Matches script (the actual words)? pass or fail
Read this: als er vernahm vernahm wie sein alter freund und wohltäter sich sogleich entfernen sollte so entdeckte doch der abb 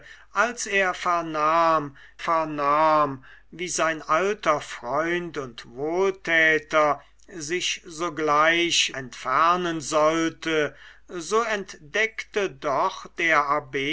pass